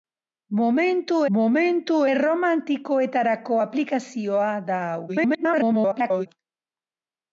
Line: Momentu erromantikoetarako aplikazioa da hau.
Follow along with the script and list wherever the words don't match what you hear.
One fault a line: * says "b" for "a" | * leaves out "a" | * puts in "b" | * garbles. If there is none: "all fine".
* puts in "momentu"
* garbles